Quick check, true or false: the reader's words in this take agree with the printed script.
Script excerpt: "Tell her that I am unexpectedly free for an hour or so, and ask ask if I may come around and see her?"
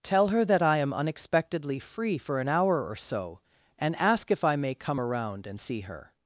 false